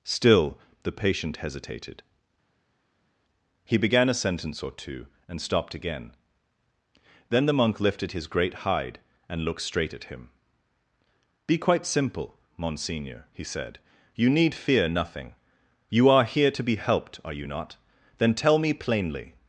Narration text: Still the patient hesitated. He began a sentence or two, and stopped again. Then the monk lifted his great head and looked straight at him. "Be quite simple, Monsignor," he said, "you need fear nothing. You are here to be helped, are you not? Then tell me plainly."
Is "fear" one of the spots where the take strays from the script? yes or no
no